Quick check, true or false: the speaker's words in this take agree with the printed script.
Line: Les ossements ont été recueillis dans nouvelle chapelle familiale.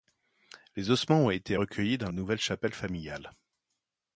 true